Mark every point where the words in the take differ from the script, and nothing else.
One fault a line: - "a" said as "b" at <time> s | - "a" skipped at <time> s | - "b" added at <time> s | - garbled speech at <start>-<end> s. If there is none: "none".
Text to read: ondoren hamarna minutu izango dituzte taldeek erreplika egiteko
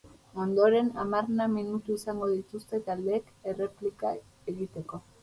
none